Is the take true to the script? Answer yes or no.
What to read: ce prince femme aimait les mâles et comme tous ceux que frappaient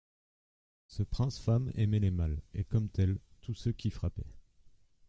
no